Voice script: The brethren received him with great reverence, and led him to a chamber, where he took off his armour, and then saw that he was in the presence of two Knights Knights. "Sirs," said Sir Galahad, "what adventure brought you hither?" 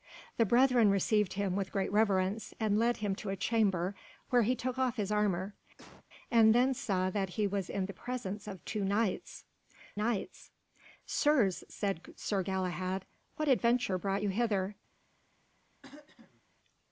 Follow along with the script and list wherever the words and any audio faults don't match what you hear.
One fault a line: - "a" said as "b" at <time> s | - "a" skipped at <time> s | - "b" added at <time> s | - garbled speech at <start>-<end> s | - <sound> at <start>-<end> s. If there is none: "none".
- cough at 5.8-6.0 s
- throat clearing at 15.8-16.4 s